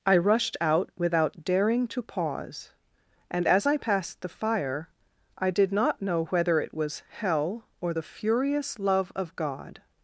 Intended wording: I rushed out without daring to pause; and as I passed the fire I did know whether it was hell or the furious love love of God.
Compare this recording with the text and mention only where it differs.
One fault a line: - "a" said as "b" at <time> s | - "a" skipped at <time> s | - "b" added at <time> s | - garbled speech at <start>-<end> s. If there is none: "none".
- "not" added at 5.7 s
- "love" skipped at 9.1 s